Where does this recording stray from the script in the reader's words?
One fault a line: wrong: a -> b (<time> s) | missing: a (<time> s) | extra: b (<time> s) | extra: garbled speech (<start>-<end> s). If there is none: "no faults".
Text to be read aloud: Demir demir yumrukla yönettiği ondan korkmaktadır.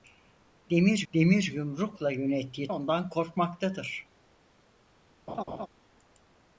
no faults